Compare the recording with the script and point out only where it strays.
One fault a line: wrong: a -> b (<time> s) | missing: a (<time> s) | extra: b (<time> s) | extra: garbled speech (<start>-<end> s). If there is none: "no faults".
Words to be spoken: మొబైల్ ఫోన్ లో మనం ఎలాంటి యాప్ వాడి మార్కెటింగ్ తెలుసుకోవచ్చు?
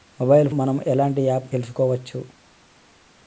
missing: ఫోన్ లో (0.5 s)
missing: వాడి మార్కెటింగ్ (1.5 s)